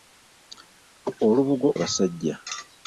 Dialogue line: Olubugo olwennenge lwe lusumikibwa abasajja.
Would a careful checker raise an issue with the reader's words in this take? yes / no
yes